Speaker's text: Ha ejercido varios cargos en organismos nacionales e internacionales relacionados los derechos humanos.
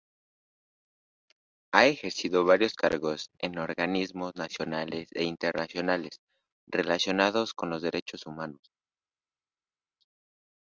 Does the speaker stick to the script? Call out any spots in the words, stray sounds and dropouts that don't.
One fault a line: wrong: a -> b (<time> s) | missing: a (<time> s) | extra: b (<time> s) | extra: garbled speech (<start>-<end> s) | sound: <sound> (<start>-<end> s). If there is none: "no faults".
extra: con (7.5 s)